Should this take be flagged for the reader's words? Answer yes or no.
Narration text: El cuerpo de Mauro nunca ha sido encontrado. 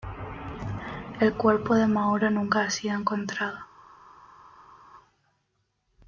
no